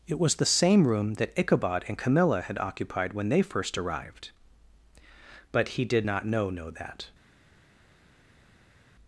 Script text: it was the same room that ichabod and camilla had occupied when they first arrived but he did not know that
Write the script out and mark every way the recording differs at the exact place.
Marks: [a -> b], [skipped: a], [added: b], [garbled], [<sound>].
it was the same room that ichabod and camilla had occupied when they first arrived but he did not know [added: know] that